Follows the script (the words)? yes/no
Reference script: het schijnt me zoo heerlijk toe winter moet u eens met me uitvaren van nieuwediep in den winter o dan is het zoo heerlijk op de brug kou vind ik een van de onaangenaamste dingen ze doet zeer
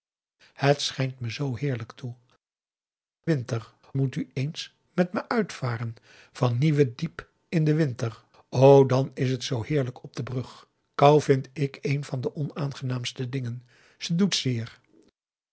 yes